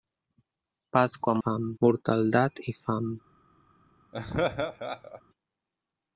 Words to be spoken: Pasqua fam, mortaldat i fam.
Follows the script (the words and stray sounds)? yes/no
no